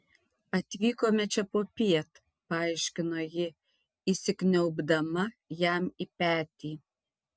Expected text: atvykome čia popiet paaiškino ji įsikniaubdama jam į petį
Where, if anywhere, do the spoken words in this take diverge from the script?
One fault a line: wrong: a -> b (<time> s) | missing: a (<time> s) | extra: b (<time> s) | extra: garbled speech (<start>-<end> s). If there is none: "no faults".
no faults